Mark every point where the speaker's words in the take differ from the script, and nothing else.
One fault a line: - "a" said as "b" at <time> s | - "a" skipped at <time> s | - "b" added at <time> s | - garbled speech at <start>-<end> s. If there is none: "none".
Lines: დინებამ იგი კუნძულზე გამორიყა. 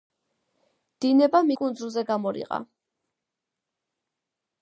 - "იგი" skipped at 1.5 s